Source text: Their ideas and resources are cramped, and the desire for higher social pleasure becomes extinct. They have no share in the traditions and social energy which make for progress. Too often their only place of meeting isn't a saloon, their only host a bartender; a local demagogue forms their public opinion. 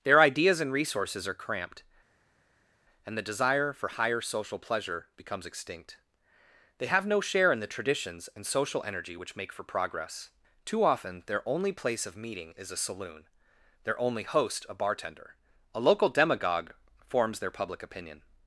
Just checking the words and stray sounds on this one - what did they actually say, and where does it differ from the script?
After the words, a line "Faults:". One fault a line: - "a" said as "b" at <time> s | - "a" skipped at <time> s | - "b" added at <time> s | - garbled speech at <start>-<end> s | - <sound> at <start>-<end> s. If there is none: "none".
Their ideas and resources are cramped, and the desire for higher social pleasure becomes extinct. They have no share in the traditions and social energy which make for progress. Too often their only place of meeting is a saloon, their only host a bartender; a local demagogue forms their public opinion.
Faults:
- "isn't" said as "is" at 12.6 s